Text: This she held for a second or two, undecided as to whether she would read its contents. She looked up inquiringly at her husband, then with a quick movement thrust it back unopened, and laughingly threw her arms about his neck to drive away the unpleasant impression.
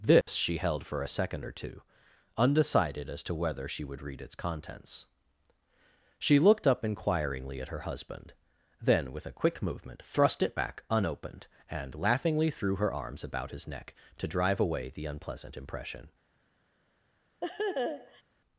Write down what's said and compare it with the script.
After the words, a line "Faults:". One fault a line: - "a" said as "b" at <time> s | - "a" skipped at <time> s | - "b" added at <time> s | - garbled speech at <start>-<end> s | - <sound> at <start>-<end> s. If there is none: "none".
This she held for a second or two, undecided as to whether she would read its contents. She looked up inquiringly at her husband, then with a quick movement thrust it back unopened, and laughingly threw her arms about his neck to drive away the unpleasant impression.
Faults:
- dropout at 0.2-0.3 s
- laugh at 17.4-18.2 s